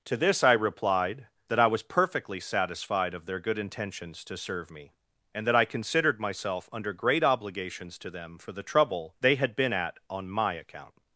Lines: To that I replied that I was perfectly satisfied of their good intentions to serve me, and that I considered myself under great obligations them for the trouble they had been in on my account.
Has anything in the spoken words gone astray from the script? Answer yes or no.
yes